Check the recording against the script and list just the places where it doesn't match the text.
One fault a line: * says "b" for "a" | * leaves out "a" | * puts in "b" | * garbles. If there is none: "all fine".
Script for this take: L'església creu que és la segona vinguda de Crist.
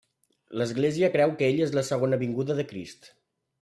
* puts in "ell"